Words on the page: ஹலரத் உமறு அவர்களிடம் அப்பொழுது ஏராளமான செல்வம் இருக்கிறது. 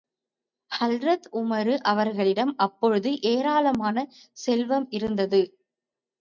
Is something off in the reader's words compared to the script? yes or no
yes